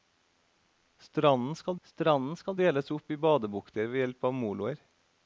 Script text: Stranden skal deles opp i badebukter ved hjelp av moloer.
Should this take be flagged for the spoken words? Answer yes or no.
yes